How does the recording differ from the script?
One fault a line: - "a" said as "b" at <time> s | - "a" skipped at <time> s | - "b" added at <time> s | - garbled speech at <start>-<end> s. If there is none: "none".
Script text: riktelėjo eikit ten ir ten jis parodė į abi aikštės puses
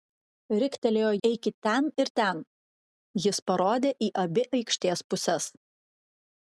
none